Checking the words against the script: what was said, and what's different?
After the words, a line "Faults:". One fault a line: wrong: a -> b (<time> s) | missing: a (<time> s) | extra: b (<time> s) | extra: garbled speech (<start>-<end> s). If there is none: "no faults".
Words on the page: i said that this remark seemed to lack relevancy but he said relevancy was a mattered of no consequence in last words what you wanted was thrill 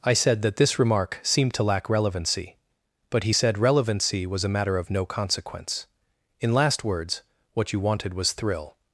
i said that this remark seemed to lack relevancy but he said relevancy was a matter of no consequence in last words what you wanted was thrill
Faults:
wrong: mattered -> matter (4.5 s)